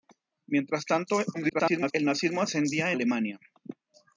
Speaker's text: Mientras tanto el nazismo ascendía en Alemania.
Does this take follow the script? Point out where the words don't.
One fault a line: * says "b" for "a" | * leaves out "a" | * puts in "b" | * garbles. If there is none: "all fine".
* garbles
* leaves out "en"